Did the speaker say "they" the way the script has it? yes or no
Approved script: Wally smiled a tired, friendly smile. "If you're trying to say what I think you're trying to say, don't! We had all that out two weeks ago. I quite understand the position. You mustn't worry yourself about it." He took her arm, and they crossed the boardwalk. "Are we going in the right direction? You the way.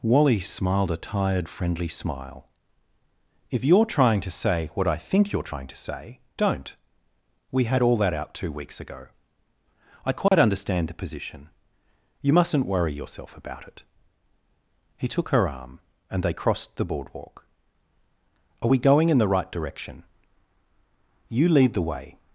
yes